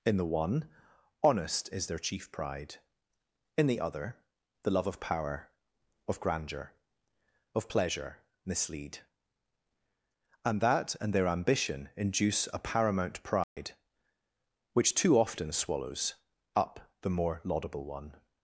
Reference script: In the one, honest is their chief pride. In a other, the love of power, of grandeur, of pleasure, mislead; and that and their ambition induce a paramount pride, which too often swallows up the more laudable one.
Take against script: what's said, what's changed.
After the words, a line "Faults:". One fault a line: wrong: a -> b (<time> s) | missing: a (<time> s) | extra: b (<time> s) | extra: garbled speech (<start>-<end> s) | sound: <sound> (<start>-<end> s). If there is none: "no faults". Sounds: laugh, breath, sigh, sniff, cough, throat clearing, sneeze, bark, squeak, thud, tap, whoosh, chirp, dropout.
In the one, honest is their chief pride. In the other, the love of power, of grandeur, of pleasure, mislead; and that and their ambition induce a paramount pride, which too often swallows up the more laudable one.
Faults:
wrong: a -> the (3.7 s)
sound: dropout (13.4-13.6 s)